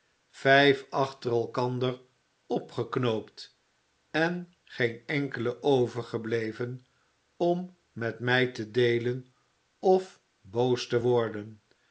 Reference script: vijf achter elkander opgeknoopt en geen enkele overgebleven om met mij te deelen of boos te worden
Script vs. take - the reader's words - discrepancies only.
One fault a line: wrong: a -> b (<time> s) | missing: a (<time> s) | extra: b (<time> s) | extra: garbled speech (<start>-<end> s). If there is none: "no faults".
no faults